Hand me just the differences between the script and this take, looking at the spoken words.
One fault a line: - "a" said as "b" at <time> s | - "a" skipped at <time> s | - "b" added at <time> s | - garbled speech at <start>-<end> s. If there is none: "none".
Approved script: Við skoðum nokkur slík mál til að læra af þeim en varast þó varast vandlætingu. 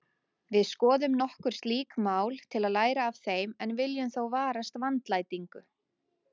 - "varast" said as "viljum" at 3.8 s